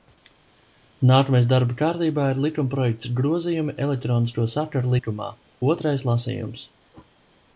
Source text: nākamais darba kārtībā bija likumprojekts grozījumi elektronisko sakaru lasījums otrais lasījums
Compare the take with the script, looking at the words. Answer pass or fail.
fail